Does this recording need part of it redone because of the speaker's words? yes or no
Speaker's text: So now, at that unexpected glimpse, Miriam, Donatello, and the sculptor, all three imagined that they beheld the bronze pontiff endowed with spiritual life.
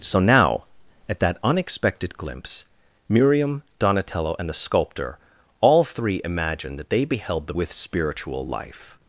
yes